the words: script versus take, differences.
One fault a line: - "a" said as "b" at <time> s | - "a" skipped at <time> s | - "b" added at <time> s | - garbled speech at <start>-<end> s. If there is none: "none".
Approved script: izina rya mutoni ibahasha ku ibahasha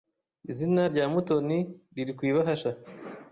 - "ibahasha" said as "riri" at 1.9 s